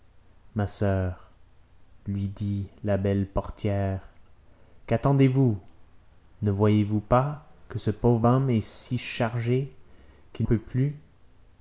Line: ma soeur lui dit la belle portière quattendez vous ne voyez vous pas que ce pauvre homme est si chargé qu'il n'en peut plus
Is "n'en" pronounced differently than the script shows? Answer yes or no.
yes